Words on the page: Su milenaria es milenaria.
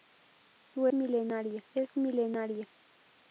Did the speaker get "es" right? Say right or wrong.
right